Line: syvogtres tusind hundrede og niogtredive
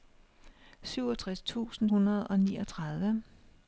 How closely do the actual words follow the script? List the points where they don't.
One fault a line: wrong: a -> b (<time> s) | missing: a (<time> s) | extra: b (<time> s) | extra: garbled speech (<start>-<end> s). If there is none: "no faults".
no faults